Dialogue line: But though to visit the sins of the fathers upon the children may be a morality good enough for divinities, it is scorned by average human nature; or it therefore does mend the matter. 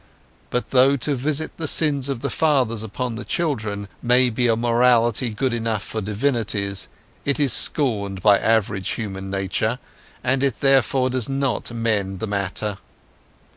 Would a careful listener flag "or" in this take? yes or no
yes